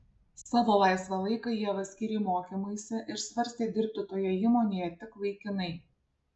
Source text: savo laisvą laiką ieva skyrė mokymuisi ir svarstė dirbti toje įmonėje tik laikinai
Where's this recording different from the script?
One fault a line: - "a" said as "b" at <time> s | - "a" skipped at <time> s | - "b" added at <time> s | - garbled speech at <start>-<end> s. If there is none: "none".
none